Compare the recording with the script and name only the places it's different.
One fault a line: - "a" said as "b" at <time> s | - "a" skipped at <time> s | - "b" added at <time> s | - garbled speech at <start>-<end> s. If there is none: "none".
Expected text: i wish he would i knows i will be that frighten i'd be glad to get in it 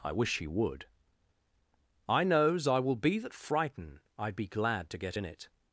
none